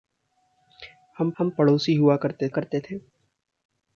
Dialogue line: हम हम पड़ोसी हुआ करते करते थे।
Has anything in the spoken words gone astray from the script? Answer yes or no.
no